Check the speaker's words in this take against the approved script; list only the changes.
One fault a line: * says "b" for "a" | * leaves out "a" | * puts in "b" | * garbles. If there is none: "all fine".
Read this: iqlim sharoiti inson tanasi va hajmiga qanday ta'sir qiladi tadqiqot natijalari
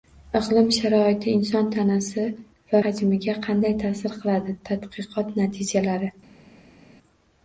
all fine